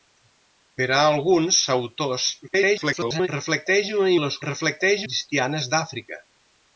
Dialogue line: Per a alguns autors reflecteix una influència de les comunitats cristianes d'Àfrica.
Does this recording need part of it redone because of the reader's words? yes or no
yes